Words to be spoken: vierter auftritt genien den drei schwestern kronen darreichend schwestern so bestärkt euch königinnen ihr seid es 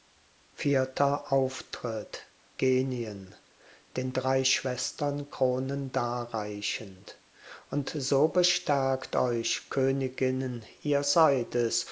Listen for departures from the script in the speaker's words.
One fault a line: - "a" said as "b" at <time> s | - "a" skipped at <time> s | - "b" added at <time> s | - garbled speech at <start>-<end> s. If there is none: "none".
- "schwestern" said as "und" at 7.7 s